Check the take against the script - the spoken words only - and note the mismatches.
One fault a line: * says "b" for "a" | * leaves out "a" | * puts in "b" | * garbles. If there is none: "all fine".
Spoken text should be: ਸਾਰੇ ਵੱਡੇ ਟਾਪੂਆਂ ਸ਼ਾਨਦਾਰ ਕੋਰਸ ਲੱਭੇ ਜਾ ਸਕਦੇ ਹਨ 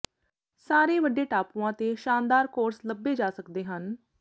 * puts in "ਤੇ"